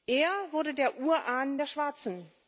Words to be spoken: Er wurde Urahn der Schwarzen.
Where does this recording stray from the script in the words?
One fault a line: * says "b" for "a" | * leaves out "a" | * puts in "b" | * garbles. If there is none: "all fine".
* puts in "der"